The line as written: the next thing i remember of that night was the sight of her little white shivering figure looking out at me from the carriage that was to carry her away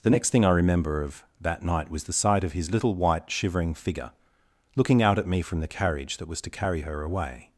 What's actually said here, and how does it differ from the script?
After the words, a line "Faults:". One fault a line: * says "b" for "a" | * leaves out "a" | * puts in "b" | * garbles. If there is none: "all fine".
the next thing i remember of that night was the sight of his little white shivering figure looking out at me from the carriage that was to carry her away
Faults:
* says "his" for "her"